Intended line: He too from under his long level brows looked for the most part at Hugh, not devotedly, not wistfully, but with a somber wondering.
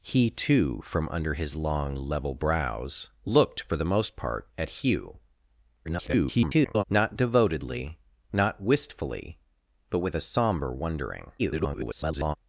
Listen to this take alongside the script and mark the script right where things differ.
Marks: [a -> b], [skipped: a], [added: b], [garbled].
He too from under his long level brows looked for the most part at Hugh, [garbled] not devotedly, not wistfully, but with a somber wondering. [garbled]